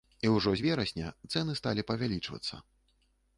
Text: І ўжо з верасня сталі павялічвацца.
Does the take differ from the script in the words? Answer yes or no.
yes